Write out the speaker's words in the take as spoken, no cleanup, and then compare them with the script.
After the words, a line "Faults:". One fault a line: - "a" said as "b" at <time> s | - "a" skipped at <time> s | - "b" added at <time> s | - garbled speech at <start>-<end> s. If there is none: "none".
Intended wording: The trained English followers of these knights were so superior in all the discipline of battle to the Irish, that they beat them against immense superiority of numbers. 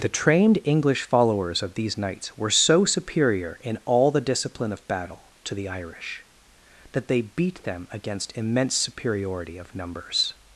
The trained English followers of these knights were so superior in all the discipline of battle to the Irish, that they beat them against immense superiority of numbers.
Faults:
none